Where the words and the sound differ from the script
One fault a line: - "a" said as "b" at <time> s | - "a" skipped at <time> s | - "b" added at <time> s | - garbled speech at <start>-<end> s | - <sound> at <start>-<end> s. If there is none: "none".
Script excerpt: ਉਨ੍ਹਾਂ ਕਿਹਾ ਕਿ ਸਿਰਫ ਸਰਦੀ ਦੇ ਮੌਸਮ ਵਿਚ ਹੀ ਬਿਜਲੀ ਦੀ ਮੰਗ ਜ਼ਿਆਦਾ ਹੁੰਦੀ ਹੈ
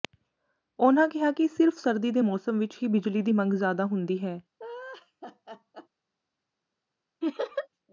- laugh at 4.6-5.9 s
- laugh at 7.2-7.7 s